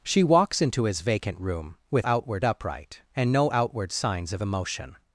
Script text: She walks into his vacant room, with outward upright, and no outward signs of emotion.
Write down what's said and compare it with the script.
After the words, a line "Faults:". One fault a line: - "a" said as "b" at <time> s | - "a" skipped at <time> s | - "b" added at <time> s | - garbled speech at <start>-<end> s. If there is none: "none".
She walks into his vacant room, with outward upright, and no outward signs of emotion.
Faults:
none